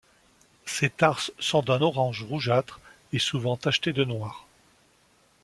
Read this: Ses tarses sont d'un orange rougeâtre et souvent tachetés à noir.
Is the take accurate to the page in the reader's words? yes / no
no